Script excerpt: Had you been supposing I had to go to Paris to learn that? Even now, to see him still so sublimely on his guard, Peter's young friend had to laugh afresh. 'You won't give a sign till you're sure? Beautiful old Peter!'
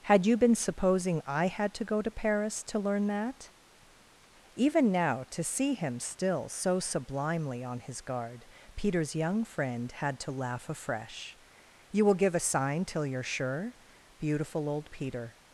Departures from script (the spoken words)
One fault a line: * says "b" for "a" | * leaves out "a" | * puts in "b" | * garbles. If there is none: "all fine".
* says "will" for "won't"